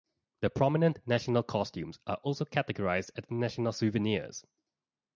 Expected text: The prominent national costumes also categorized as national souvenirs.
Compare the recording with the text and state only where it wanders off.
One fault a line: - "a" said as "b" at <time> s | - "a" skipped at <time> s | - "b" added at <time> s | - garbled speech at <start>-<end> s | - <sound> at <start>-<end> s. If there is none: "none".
- "are" added at 2.1 s